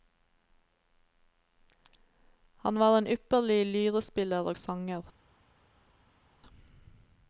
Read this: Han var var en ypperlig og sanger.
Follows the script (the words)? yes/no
no